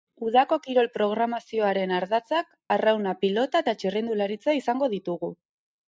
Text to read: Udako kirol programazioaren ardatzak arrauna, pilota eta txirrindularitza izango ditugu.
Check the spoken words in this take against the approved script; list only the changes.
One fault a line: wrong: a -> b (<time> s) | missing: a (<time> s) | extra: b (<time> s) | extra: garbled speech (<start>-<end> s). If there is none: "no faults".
no faults